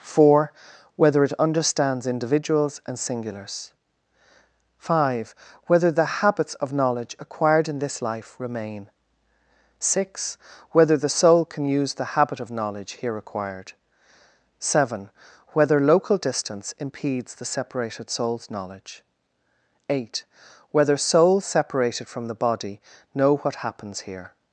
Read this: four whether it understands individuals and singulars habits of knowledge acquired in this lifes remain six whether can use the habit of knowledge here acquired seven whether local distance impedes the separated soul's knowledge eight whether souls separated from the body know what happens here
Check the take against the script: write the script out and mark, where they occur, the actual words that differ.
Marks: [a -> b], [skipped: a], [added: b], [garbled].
four whether it understands individuals and singulars [added: five whether the] habits of knowledge acquired in this [lifes -> life] remain six whether [added: the soul] can use the habit of knowledge here acquired seven whether local distance impedes the separated soul's knowledge eight whether souls separated from the body know what happens here